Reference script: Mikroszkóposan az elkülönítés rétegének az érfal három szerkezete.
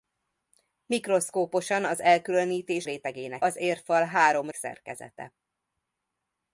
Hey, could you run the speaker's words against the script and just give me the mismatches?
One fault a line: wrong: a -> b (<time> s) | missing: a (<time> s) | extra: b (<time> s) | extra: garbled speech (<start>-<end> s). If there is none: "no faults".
no faults